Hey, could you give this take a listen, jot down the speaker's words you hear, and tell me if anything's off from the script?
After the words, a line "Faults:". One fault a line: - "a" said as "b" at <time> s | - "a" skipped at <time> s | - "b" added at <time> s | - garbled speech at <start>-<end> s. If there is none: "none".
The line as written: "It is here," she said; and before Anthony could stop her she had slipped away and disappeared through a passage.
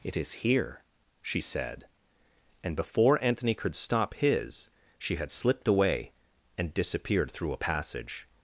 "It is here," she said; and before Anthony could stop his she had slipped away and disappeared through a passage.
Faults:
- "her" said as "his" at 4.2 s